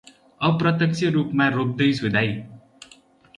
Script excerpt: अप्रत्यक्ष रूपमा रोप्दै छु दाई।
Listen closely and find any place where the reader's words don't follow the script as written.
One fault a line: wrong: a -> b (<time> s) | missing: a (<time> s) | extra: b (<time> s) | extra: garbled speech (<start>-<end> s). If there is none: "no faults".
no faults